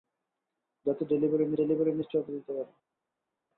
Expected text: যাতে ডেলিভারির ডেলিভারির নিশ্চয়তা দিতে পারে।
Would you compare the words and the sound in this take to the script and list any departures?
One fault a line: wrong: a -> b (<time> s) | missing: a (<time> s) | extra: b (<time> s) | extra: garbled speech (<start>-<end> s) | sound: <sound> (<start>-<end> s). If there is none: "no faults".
no faults